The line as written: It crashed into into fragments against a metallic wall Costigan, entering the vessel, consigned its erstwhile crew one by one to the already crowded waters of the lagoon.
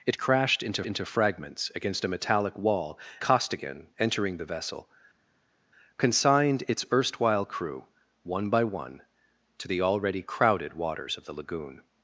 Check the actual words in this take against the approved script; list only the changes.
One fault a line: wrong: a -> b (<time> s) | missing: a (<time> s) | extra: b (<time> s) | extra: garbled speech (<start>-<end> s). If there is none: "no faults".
no faults